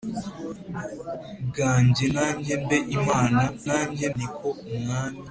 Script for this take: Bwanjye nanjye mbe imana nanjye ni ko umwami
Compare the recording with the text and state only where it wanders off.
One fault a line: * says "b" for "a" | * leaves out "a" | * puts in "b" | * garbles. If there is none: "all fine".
all fine